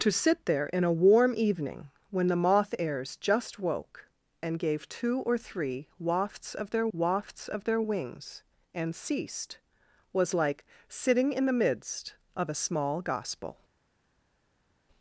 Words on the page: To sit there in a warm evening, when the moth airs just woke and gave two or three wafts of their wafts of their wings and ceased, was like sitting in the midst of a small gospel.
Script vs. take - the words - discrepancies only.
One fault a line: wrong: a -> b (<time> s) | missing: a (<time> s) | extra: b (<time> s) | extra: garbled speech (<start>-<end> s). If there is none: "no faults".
no faults